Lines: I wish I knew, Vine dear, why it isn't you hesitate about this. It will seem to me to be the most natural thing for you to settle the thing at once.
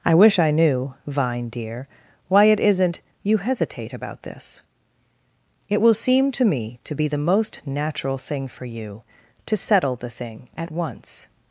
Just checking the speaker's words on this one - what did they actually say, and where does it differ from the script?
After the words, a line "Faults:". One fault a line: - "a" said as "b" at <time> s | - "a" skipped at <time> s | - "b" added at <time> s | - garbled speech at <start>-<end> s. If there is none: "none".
I wish I knew, Vine dear, why it isn't you hesitate about this. It will seem to me to be the most natural thing for you to settle the thing at once.
Faults:
none